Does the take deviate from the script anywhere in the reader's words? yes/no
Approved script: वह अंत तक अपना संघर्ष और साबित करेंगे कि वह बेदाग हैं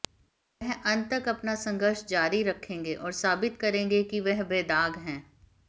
yes